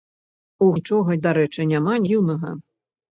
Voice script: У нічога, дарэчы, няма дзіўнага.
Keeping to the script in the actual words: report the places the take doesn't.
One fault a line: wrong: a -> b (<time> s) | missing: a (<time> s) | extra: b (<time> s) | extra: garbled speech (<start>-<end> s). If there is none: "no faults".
no faults